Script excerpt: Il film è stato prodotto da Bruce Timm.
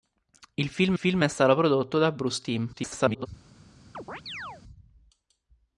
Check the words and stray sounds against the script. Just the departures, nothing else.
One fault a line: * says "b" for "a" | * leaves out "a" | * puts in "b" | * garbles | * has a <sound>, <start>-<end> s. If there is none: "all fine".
* puts in "film"
* garbles
* has a chirp, 3.9-4.6 s